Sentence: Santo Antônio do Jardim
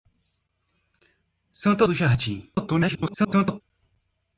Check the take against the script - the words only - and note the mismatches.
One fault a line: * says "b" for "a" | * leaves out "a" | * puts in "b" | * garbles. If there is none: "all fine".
* leaves out "Antônio"
* garbles